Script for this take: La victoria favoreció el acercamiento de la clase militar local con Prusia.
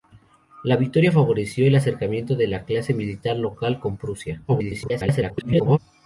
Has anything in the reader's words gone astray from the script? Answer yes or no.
yes